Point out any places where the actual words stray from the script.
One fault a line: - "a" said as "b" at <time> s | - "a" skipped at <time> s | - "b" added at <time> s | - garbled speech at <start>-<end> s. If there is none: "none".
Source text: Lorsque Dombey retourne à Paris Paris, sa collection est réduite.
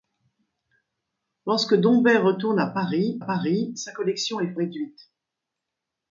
none